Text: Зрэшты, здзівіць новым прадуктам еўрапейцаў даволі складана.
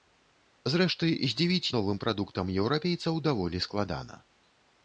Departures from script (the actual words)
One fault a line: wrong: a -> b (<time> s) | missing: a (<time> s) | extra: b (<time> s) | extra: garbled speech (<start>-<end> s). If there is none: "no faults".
no faults